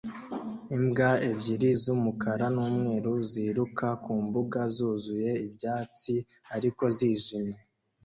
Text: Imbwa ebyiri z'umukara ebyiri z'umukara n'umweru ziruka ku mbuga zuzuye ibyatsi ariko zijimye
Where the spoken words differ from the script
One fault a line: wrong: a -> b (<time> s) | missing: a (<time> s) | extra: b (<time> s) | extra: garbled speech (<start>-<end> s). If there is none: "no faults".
missing: ebyiri z'umukara (2.5 s)